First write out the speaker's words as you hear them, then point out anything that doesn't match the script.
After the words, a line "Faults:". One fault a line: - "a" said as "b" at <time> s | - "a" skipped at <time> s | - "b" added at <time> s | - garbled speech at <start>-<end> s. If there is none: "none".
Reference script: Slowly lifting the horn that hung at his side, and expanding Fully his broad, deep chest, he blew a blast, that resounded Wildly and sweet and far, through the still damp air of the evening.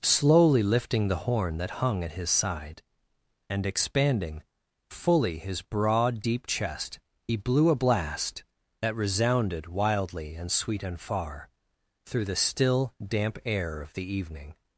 Slowly lifting the horn that hung at his side, and expanding Fully his broad, deep chest, he blew a blast, that resounded Wildly and sweet and far, through the still damp air of the evening.
Faults:
none